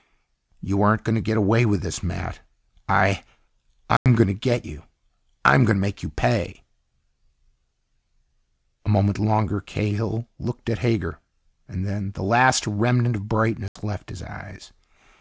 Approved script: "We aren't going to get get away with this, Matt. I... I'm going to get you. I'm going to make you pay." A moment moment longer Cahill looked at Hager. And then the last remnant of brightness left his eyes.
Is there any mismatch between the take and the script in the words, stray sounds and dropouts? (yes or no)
yes